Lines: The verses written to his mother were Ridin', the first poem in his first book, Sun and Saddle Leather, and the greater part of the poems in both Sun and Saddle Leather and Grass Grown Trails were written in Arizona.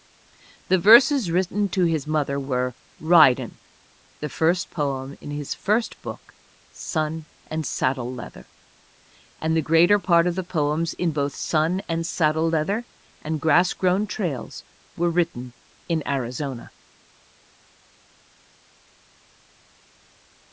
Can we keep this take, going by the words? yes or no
yes